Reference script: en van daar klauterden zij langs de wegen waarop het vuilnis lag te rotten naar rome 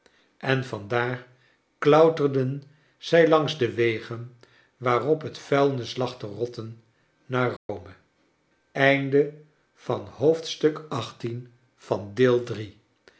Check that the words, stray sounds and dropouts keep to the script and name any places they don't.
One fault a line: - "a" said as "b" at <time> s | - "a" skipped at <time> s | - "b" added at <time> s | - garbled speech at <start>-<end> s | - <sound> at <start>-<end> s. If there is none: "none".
- dropout at 7.6-7.7 s